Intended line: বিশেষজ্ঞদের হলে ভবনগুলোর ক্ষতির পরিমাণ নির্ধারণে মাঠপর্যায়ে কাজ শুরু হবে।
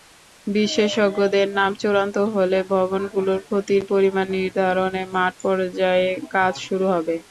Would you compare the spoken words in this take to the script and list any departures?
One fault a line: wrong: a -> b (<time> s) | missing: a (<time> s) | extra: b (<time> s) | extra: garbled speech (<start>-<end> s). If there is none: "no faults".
extra: নাম চূড়ান্ত (1.6 s)